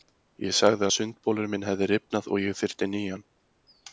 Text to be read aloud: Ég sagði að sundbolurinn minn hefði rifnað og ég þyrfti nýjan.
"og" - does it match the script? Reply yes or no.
yes